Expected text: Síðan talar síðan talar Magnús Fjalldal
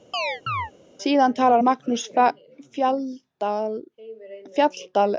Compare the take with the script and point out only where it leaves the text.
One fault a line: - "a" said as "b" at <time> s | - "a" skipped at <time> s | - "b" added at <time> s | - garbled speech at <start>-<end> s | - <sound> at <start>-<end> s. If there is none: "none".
- chirp at 0.1-0.7 s
- "síðan talar" skipped at 1.6 s